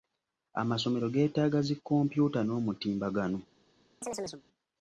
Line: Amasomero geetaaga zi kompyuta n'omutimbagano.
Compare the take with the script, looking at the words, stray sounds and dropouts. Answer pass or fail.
fail